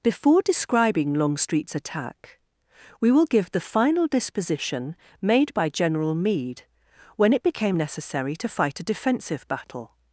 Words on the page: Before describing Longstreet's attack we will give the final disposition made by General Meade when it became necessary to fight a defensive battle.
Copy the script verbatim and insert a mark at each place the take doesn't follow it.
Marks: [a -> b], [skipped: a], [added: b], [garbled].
Before describing Longstreet's attack we will give the final disposition made by General Meade when it became necessary to fight a defensive battle.